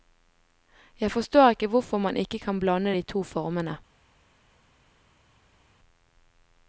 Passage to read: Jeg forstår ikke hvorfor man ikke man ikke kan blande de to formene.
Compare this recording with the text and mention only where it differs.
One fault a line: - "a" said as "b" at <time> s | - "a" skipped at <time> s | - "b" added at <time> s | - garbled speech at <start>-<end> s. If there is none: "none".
- "man ikke" skipped at 2.4 s